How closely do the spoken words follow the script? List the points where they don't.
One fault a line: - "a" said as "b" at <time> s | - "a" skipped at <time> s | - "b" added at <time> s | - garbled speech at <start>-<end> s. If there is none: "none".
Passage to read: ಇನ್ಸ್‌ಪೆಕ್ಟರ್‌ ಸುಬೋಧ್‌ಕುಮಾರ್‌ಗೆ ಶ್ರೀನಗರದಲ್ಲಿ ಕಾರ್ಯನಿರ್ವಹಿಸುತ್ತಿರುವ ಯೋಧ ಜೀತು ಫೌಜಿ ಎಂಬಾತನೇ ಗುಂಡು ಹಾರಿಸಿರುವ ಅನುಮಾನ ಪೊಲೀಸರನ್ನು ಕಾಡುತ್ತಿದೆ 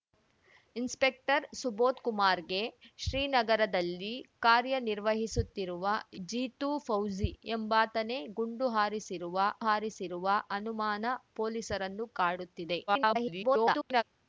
- "ಯೋಧ" skipped at 5.8 s
- "ಹಾರಿಸಿರುವ" added at 9.7 s
- garbled speech at 12.9-14.0 s